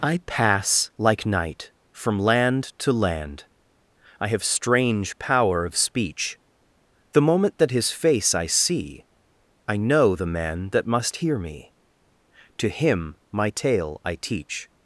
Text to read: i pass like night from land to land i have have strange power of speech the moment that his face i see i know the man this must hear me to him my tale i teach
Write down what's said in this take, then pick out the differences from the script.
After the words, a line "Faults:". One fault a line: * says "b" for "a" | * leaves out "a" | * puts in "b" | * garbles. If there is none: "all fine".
i pass like night from land to land i have strange power of speech the moment that his face i see i know the man that must hear me to him my tale i teach
Faults:
* leaves out "have"
* says "that" for "this"